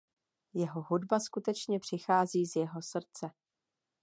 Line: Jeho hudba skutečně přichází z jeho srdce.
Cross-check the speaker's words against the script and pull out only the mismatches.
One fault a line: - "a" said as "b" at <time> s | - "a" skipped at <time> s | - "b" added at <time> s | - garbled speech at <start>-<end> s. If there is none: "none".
none